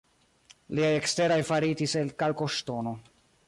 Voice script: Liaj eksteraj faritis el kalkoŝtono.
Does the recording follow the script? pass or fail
pass